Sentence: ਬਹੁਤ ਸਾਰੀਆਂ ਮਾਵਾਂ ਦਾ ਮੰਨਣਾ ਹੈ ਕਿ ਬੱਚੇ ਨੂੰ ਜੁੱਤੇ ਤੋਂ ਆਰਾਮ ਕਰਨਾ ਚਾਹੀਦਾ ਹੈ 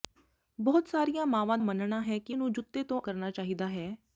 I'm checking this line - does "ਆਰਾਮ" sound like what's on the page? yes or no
no